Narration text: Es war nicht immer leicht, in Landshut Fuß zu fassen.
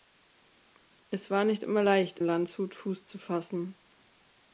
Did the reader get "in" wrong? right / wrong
wrong